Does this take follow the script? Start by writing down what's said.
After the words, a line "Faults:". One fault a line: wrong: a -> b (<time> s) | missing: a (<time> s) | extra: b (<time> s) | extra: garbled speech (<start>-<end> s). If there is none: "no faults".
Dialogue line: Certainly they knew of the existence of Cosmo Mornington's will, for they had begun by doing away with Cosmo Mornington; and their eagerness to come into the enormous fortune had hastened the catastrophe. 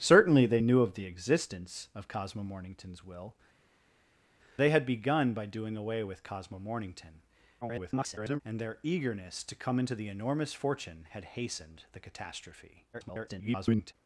Certainly they knew of the existence of Cosmo Mornington's will, they had begun by doing away with Cosmo Mornington; [garbled] and their eagerness to come into the enormous fortune had hastened the catastrophe. [garbled]
Faults:
missing: for (3.3 s)
extra: garbled speech (7.6-8.4 s)
extra: garbled speech (12.9-13.9 s)